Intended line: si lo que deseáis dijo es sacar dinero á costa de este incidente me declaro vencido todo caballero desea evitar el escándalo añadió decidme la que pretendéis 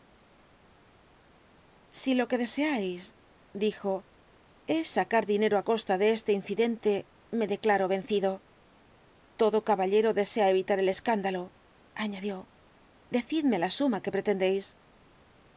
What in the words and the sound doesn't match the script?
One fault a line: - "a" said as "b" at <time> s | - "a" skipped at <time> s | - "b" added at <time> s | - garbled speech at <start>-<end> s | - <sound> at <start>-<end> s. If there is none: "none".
- "suma" added at 13.8 s